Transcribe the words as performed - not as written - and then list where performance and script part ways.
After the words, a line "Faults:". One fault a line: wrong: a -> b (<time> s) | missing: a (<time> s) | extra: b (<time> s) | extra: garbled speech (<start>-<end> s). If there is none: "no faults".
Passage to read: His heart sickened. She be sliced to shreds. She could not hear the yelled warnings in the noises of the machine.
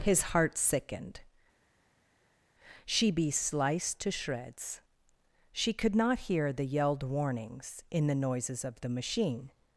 His heart sickened. She be sliced to shreds. She could not hear the yelled warnings in the noises of the machine.
Faults:
no faults